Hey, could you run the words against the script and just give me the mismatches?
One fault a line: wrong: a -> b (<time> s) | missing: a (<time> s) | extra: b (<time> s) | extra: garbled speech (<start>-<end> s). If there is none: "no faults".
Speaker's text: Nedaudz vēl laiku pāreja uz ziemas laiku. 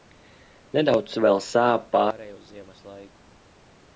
wrong: laiku -> sāp (1.5 s)